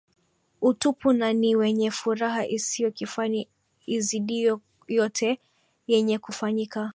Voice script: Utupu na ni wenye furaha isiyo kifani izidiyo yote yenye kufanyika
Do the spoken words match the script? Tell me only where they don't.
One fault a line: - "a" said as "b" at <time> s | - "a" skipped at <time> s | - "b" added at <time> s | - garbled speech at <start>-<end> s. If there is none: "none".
none